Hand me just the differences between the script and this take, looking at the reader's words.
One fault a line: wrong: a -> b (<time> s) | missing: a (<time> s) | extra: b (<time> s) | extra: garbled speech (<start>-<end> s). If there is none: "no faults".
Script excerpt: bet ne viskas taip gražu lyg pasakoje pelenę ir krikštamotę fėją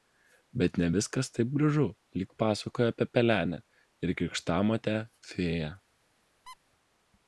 extra: apie (2.9 s)